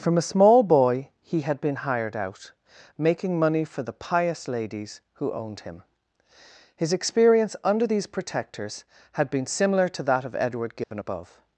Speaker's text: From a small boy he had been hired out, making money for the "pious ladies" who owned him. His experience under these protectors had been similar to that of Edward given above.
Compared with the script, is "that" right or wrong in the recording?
right